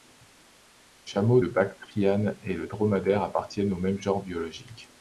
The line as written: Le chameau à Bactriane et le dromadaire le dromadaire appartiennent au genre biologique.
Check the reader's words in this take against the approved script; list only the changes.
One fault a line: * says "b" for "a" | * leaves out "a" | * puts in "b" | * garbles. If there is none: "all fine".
* says "de" for "à"
* leaves out "le dromadaire"
* puts in "même"